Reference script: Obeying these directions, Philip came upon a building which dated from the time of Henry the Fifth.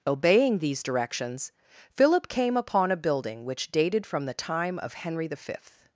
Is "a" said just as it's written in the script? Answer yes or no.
yes